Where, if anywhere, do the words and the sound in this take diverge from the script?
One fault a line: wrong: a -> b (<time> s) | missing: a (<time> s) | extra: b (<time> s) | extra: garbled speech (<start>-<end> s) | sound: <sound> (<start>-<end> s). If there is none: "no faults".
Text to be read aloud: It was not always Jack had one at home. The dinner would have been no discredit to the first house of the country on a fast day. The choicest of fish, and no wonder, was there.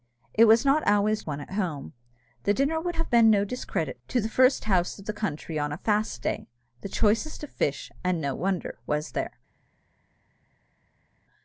missing: Jack had (1.2 s)